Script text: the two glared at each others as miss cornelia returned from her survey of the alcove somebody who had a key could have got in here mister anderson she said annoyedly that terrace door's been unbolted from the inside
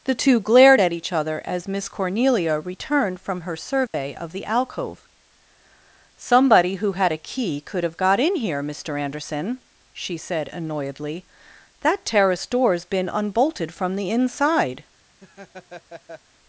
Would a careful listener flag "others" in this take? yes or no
yes